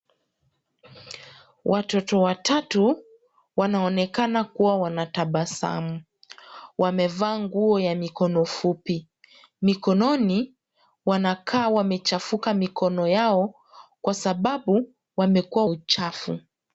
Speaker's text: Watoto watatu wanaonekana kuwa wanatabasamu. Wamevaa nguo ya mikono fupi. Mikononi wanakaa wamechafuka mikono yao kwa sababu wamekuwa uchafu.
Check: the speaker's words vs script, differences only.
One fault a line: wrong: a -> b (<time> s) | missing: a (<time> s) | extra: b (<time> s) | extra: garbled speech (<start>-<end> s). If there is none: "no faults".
no faults